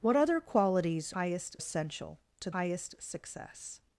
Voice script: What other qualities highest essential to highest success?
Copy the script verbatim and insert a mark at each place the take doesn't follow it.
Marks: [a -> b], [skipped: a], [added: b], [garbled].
What other qualities highest essential to highest success?